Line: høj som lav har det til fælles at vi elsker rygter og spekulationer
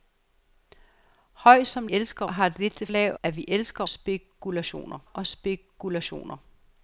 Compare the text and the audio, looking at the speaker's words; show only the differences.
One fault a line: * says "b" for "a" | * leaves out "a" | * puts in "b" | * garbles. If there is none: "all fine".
* says "elsker" for "lav"
* says "lav" for "fælles"
* says "spekulationer" for "rygter"